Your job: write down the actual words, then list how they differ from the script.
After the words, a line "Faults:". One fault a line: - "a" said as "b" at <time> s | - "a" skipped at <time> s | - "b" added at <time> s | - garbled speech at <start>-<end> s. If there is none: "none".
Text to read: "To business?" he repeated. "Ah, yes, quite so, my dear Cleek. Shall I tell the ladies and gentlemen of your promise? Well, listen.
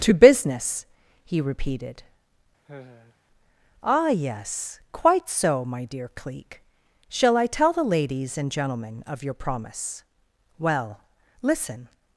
"To business?" he repeated. "Ah, yes, quite so, my dear Cleek. Shall I tell the ladies and gentlemen of your promise? Well, listen.
Faults:
none